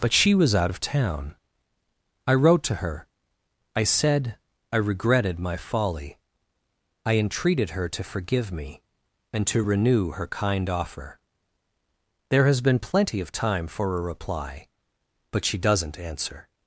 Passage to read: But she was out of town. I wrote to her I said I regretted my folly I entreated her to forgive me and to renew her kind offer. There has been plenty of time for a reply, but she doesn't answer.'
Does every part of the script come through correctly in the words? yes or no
yes